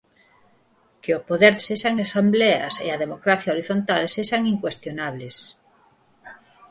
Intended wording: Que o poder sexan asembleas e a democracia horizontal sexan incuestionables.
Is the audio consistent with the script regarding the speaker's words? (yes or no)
yes